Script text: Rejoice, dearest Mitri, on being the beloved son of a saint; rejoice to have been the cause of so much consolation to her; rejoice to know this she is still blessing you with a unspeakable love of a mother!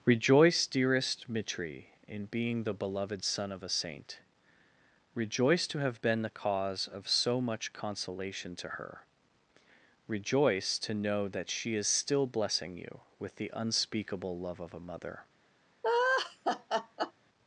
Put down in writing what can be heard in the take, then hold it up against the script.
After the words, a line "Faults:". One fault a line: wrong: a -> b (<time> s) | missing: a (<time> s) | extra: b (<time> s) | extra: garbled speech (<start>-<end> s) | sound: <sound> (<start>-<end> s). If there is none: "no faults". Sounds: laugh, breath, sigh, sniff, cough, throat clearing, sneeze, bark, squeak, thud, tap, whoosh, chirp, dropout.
Rejoice, dearest Mitri, in being the beloved son of a saint; rejoice to have been the cause of so much consolation to her; rejoice to know that she is still blessing you with the unspeakable love of a mother!
Faults:
wrong: on -> in (2.1 s)
wrong: this -> that (11.3 s)
wrong: a -> the (13.4 s)
sound: laugh (15.8-17.1 s)